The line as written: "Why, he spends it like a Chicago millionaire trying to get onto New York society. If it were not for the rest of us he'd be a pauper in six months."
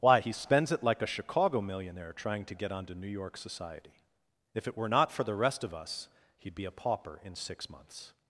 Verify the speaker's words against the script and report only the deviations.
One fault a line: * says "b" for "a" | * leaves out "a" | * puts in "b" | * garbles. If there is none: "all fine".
all fine